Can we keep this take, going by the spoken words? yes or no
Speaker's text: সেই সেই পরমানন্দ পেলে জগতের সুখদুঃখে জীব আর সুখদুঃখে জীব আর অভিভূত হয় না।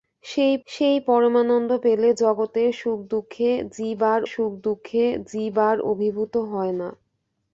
yes